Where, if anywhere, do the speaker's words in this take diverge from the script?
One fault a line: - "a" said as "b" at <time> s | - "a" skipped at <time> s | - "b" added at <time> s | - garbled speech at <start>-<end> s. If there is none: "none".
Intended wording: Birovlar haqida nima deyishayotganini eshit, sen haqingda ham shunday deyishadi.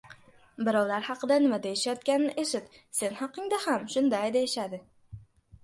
none